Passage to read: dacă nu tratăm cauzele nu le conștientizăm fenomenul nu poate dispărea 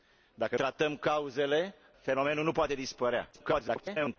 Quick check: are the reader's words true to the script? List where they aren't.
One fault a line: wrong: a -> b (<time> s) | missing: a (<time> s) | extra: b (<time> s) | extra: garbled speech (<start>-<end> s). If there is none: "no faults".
missing: nu (0.6 s)
missing: nu le conștientizăm (1.7 s)
extra: garbled speech (3.3-4.2 s)